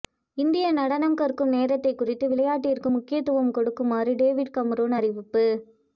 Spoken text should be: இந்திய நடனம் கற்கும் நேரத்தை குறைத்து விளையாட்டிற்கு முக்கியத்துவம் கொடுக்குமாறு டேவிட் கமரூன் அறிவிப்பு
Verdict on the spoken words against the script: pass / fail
pass